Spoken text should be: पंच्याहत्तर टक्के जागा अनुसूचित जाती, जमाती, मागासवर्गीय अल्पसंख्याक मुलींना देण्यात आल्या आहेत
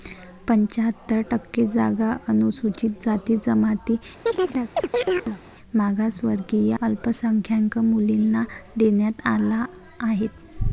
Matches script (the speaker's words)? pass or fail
pass